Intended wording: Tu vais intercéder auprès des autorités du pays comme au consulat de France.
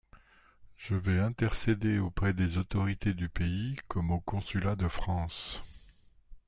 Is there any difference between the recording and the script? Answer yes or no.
yes